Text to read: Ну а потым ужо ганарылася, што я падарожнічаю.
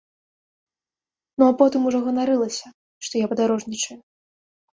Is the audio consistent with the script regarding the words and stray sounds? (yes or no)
yes